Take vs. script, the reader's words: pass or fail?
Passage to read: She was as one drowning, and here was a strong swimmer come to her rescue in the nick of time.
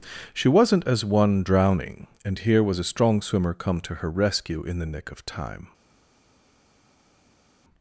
fail